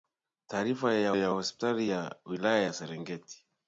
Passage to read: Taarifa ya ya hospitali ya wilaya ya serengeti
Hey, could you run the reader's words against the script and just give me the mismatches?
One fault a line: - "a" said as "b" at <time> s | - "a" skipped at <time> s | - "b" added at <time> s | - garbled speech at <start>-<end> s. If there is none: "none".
none